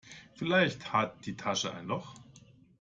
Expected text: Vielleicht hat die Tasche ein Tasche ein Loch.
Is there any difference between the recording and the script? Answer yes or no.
yes